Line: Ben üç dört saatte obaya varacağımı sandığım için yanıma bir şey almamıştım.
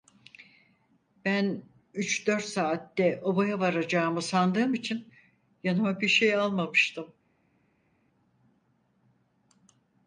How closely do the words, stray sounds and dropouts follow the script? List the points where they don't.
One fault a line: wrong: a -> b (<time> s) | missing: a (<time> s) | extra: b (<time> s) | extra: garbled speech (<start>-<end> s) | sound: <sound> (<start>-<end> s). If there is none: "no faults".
no faults